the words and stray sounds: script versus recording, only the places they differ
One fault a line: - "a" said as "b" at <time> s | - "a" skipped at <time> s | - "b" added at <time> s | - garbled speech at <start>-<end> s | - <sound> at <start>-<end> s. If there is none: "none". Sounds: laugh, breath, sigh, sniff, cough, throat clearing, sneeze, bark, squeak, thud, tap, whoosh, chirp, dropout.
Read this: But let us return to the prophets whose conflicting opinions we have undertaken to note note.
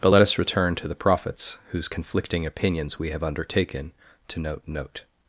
none